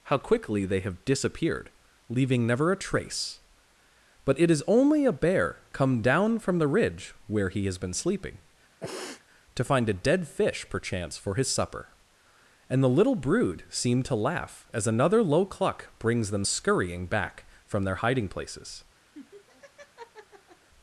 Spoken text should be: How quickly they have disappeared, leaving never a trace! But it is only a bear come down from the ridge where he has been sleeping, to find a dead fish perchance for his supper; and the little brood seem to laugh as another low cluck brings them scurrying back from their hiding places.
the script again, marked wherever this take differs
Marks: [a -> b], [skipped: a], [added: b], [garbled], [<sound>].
How quickly they have disappeared, leaving never a trace! But it is only a bear come down from the ridge where he has been sleeping, [sniff] to find a dead fish perchance for his supper; and the little brood seem to laugh as another low cluck brings them scurrying back from their hiding places. [laugh]